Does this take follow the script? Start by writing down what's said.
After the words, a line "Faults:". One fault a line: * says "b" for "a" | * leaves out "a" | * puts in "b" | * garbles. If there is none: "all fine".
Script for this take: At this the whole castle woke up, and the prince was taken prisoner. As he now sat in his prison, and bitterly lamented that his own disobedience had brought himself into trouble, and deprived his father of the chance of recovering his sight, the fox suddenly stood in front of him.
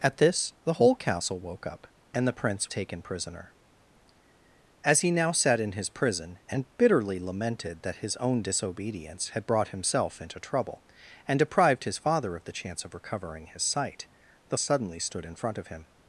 At this the whole castle woke up, and the prince taken prisoner. As he now sat in his prison, and bitterly lamented that his own disobedience had brought himself into trouble, and deprived his father of the chance of recovering his sight, the suddenly stood in front of him.
Faults:
* leaves out "was"
* leaves out "fox"